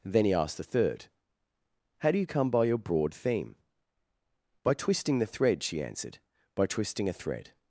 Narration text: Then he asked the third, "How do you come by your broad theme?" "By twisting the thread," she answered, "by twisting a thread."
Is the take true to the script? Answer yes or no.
yes